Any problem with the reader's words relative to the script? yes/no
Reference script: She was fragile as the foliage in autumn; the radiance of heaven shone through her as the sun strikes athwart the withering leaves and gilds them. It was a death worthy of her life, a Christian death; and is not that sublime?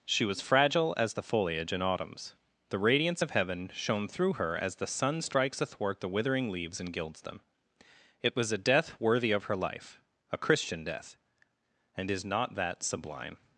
yes